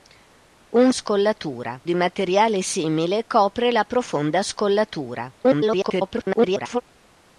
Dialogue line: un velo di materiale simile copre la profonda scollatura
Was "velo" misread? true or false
true